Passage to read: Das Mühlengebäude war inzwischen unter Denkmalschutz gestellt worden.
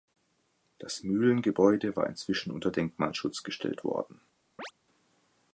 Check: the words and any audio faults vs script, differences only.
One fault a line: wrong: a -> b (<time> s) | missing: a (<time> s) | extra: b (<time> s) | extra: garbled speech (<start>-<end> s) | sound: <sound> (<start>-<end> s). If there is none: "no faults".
sound: chirp (4.6-4.7 s)